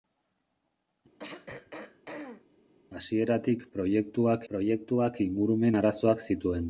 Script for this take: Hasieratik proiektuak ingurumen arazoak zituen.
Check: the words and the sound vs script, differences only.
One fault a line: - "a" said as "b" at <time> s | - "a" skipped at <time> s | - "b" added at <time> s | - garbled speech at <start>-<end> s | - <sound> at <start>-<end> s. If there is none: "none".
- throat clearing at 1.2-2.5 s
- "proiektuak" added at 4.5 s